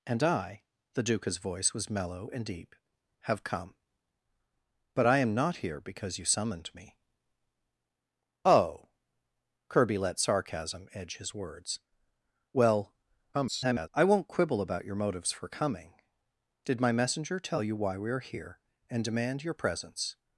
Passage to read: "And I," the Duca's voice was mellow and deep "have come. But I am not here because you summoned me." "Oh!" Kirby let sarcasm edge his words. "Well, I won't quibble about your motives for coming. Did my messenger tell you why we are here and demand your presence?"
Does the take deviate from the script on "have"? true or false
false